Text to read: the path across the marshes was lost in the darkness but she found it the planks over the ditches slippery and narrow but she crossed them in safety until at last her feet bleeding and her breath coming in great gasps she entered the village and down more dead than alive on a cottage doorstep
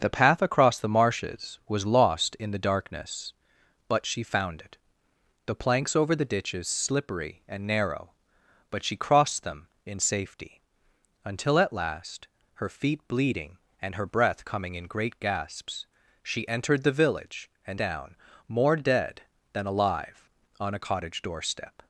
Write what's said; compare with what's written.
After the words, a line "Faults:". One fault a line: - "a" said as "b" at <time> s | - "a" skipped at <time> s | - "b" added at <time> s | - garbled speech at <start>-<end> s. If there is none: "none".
the path across the marshes was lost in the darkness but she found it the planks over the ditches slippery and narrow but she crossed them in safety until at last her feet bleeding and her breath coming in great gasps she entered the village and down more dead than alive on a cottage doorstep
Faults:
none